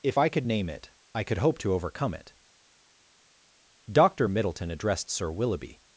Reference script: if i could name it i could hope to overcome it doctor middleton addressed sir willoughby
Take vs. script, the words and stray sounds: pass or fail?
pass